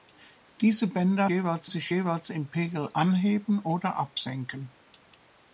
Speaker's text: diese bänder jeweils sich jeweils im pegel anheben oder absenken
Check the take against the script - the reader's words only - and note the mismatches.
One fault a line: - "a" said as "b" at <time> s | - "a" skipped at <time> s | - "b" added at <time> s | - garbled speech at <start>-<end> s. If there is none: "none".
none